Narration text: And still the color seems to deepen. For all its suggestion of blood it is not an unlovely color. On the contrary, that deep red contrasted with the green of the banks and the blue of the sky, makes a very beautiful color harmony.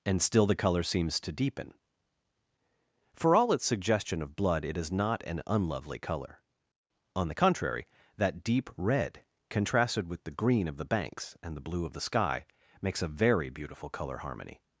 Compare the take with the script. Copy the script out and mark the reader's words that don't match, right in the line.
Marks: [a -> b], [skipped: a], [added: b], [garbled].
And still the color seems to deepen. For all its suggestion of blood it is not an unlovely color. On the contrary, that deep red contrasted with the green of the banks and the blue of the sky, makes a very beautiful color harmony.